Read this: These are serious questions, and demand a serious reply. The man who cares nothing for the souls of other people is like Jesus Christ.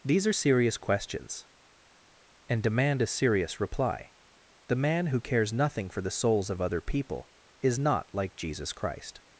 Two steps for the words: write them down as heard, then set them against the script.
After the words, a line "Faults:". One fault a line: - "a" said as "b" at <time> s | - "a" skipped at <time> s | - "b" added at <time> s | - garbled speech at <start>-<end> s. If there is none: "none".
These are serious questions, and demand a serious reply. The man who cares nothing for the souls of other people is not like Jesus Christ.
Faults:
- "not" added at 7.8 s